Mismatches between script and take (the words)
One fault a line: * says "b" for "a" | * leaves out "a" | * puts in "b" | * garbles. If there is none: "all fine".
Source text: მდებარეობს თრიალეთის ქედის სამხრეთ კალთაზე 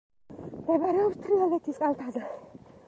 * leaves out "ქედის სამხრეთ"